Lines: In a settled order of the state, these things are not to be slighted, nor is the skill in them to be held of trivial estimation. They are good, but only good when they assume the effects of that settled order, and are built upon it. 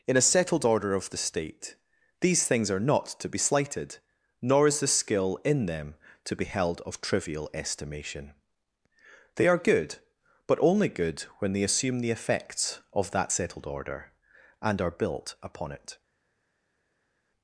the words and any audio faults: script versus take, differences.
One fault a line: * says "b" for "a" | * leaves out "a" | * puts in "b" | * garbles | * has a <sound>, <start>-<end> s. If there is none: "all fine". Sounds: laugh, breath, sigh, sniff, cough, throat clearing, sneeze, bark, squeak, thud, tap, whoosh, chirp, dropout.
all fine